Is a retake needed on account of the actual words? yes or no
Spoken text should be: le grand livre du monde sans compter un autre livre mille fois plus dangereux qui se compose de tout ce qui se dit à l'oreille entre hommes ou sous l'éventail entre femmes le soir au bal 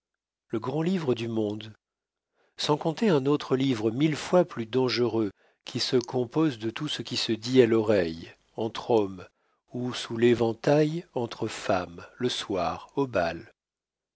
no